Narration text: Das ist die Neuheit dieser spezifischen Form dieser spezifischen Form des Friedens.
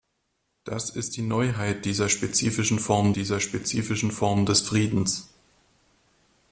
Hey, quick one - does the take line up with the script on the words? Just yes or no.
yes